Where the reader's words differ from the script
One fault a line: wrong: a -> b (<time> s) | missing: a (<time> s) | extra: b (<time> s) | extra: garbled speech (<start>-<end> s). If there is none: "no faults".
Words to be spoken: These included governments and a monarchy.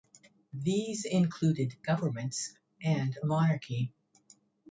no faults